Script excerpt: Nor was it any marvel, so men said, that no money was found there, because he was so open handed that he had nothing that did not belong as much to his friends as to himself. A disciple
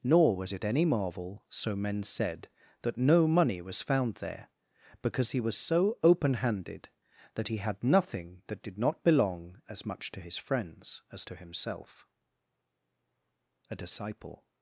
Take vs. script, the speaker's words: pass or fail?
pass